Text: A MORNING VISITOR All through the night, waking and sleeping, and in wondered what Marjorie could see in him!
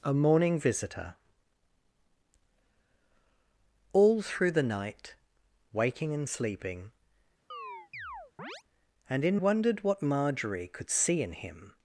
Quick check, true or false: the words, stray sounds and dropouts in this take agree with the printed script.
false